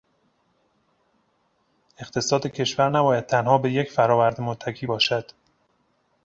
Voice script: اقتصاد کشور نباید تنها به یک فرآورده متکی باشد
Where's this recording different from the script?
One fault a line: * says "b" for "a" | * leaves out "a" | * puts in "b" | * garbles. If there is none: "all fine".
all fine